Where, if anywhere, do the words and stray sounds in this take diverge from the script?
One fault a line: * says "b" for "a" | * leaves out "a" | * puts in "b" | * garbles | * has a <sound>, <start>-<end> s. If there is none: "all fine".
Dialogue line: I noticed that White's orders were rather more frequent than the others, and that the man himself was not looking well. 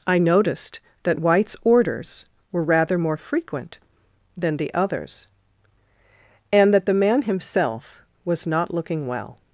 all fine